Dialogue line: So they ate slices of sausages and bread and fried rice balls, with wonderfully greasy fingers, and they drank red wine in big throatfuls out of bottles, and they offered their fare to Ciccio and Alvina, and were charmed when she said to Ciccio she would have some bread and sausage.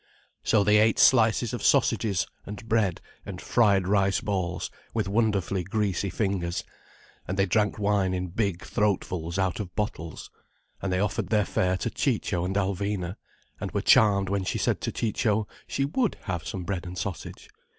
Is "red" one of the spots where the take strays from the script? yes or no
yes